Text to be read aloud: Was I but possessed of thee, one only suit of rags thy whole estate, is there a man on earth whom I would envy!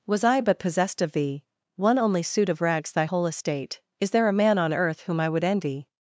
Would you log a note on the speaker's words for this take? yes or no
no